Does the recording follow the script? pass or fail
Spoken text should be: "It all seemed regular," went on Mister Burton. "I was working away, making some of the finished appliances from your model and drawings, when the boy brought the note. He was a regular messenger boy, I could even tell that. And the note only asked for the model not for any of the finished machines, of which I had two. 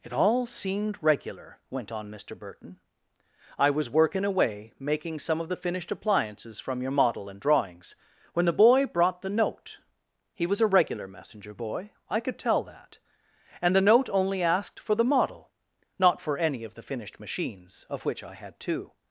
fail